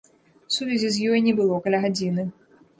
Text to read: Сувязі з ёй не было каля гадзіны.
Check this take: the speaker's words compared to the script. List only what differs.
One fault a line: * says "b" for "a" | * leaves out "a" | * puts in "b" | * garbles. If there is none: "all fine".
all fine